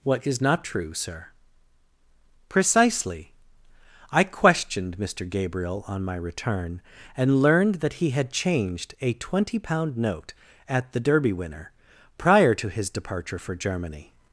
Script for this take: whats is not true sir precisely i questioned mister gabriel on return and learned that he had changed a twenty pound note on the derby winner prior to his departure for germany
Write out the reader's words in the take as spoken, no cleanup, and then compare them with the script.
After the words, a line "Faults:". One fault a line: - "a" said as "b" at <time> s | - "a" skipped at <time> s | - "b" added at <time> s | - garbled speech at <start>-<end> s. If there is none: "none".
what is not true sir precisely i questioned mister gabriel on my return and learned that he had changed a twenty pound note at the derby winner prior to his departure for germany
Faults:
- "whats" said as "what" at 0.0 s
- "my" added at 6.0 s
- "on" said as "at" at 10.7 s